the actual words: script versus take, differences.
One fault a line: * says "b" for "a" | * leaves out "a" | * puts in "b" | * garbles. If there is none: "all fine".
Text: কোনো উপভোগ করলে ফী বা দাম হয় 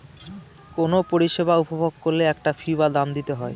* puts in "পরিষেবা"
* puts in "একটা"
* puts in "দিতে"